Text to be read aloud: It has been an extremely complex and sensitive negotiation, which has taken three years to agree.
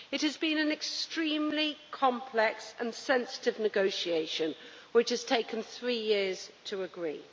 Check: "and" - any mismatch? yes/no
no